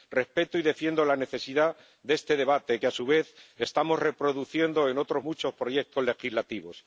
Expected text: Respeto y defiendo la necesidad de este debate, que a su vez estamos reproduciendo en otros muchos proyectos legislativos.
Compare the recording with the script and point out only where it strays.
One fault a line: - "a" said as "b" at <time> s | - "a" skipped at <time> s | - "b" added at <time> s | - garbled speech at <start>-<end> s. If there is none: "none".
none